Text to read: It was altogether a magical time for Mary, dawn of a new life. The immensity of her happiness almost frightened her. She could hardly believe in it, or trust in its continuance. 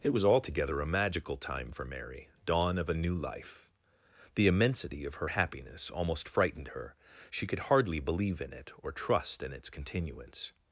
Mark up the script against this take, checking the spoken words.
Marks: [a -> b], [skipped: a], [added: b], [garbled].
It was altogether a magical time for Mary, dawn of a new life. The immensity of her happiness almost frightened her. She could hardly believe in it, or trust in its continuance.